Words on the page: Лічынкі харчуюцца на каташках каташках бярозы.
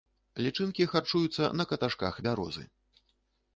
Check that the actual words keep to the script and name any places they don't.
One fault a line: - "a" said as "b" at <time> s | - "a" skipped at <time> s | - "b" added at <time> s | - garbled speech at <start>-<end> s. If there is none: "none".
- "каташках" skipped at 2.1 s